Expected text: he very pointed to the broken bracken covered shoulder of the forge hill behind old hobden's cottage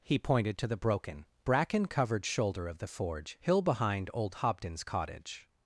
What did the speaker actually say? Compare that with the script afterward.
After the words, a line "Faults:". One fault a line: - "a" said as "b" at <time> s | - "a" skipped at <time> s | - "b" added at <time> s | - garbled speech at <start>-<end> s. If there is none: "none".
he pointed to the broken bracken covered shoulder of the forge hill behind old hobden's cottage
Faults:
- "very" skipped at 0.2 s